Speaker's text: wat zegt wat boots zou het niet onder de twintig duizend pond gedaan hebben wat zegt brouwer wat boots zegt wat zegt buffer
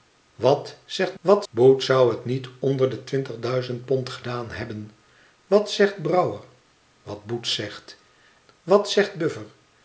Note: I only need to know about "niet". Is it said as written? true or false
true